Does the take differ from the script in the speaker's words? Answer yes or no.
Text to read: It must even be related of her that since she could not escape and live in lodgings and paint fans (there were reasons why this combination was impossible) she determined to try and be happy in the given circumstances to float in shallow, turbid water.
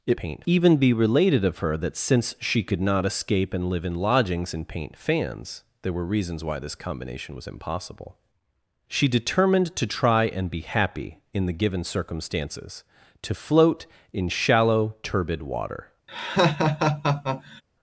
yes